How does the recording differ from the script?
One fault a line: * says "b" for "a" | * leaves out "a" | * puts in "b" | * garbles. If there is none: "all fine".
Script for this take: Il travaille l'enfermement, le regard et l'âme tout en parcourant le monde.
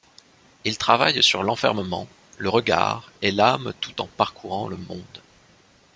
* puts in "sur"